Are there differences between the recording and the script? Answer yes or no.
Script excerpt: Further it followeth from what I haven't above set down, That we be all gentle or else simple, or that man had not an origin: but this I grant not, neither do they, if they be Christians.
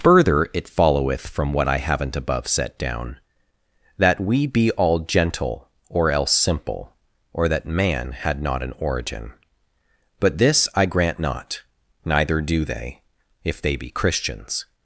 no